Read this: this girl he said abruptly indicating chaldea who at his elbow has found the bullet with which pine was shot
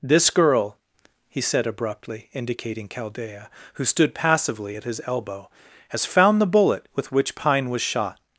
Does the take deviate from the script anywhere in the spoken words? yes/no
yes